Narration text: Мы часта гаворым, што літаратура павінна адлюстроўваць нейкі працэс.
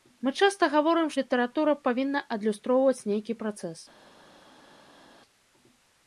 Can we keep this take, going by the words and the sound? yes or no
no